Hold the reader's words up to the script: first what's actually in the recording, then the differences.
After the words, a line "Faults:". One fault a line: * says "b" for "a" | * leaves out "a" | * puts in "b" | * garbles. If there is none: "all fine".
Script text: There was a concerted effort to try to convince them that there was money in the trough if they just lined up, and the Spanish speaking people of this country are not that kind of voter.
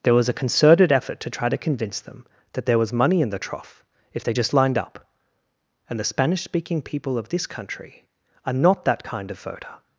There was a concerted effort to try to convince them that there was money in the trough if they just lined up, and the Spanish speaking people of this country are not that kind of voter.
Faults:
all fine